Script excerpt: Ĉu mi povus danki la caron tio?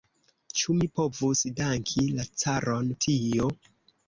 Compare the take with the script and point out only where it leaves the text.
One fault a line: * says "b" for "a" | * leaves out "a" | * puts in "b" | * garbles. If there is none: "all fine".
all fine